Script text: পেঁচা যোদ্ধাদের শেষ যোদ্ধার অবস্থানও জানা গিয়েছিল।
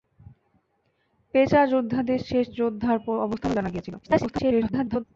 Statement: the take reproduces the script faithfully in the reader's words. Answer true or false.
false